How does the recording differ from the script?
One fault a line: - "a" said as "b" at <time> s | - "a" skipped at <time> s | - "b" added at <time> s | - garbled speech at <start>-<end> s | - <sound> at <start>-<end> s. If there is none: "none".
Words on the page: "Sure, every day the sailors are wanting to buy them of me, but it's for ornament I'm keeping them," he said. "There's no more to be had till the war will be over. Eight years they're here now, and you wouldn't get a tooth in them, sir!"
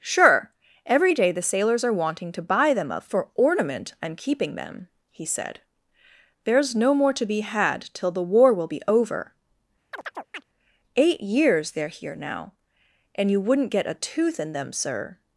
- "me but it's" skipped at 3.1 s
- chirp at 9.9-10.4 s